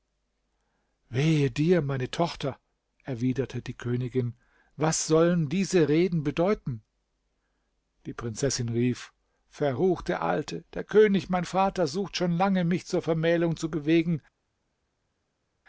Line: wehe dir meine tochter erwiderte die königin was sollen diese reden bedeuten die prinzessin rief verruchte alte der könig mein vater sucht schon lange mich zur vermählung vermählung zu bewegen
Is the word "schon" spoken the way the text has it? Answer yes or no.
yes